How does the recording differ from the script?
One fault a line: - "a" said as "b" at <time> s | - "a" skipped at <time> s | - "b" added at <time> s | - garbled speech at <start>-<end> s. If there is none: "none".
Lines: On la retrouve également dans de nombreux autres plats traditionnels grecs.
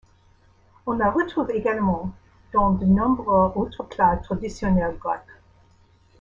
none